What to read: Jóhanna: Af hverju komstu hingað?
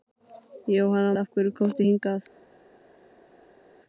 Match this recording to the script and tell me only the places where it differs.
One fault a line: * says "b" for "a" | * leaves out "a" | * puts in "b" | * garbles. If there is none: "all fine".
all fine